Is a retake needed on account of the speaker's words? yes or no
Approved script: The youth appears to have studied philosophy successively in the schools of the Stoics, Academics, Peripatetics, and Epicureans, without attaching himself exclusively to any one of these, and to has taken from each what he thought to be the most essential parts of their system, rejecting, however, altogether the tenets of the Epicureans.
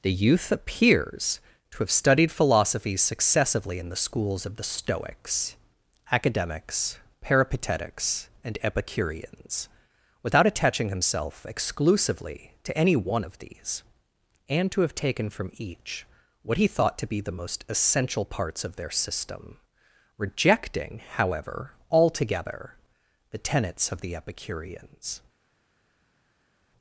yes